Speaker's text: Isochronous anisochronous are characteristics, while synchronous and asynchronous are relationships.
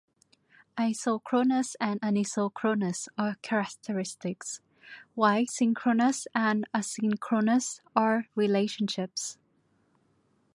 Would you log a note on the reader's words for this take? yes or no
yes